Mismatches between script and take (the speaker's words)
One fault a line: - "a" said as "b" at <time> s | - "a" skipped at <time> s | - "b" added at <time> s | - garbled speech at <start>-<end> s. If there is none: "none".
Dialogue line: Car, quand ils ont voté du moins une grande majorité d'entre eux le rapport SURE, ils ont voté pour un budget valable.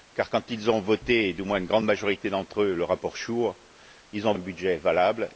- "voté pour" skipped at 4.3 s